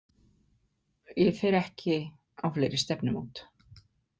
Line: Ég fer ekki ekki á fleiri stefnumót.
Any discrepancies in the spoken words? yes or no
yes